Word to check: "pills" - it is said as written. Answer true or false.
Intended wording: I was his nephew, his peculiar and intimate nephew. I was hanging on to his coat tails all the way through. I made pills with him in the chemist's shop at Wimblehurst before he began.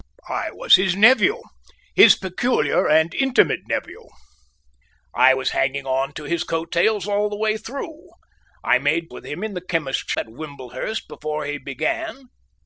false